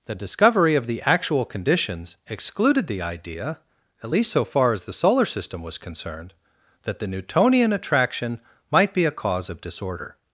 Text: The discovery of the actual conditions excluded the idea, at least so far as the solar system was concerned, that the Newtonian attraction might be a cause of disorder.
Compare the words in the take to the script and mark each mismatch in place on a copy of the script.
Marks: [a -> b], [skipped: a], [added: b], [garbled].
The discovery of the actual conditions excluded the idea, at least so far as the solar system was concerned, that the Newtonian attraction might be a cause of disorder.